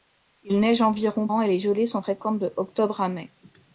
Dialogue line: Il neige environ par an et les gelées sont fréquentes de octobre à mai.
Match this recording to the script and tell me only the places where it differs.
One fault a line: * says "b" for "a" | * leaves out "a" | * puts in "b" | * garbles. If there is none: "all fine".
* leaves out "par"